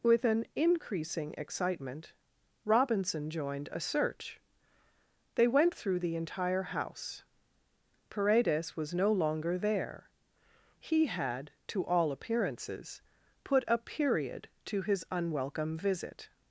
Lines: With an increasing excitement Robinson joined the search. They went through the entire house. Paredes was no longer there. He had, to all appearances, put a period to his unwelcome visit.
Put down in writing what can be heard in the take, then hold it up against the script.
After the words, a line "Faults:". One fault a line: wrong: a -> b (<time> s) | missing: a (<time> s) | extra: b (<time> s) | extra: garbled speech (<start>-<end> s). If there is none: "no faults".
With an increasing excitement Robinson joined a search. They went through the entire house. Paredes was no longer there. He had, to all appearances, put a period to his unwelcome visit.
Faults:
wrong: the -> a (3.7 s)